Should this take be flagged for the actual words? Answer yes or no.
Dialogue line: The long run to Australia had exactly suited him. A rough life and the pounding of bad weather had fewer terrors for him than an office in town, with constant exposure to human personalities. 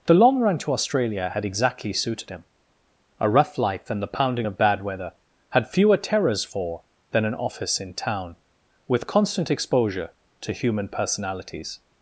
yes